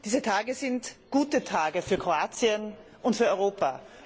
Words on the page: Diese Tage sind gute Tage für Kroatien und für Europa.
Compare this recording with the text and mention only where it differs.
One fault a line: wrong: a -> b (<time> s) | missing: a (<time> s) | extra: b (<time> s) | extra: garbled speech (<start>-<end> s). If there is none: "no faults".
no faults